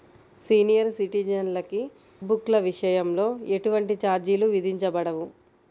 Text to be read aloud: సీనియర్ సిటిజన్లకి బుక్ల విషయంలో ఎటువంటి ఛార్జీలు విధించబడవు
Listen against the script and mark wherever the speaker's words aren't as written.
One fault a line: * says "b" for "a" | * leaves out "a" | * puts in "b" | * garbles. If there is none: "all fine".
all fine